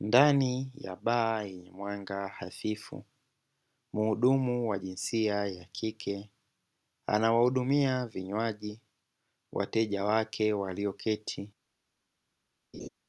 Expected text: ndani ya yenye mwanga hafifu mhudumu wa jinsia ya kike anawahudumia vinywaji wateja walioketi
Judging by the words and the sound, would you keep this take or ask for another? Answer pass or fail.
fail